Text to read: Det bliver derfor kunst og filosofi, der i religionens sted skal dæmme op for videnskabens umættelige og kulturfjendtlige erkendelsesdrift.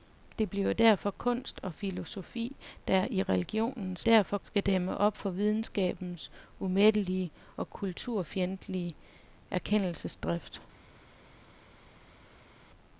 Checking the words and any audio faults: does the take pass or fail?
fail